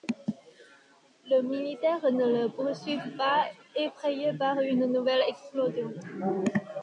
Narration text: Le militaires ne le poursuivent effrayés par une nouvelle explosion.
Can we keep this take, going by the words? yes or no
no